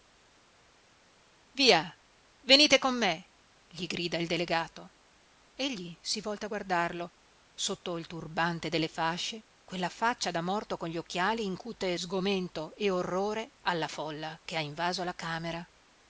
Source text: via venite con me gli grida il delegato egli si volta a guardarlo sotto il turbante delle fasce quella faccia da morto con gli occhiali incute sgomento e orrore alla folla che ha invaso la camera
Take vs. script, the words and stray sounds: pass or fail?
pass